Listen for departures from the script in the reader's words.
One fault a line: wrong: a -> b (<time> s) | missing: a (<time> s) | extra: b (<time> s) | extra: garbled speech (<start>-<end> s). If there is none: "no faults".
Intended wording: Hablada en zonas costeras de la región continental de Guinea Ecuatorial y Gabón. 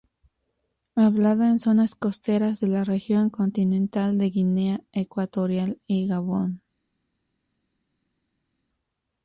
no faults